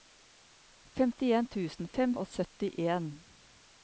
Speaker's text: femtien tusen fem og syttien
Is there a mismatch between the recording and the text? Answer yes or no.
no